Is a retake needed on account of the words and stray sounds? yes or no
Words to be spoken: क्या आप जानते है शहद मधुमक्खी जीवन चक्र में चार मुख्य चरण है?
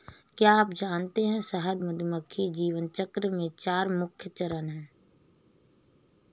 no